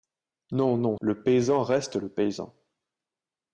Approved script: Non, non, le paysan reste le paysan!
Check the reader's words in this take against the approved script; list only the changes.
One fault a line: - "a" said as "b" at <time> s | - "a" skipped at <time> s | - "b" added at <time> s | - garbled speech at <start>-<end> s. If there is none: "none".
none